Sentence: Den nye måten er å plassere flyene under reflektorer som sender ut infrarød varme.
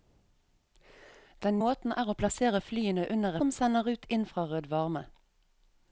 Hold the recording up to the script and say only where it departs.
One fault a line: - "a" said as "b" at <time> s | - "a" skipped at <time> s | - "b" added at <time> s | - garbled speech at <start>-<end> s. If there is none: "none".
- "nye" skipped at 1.6 s
- "reflektorer" skipped at 3.4 s